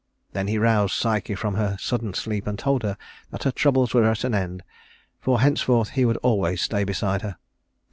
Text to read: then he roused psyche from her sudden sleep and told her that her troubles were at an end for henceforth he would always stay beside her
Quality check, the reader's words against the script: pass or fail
pass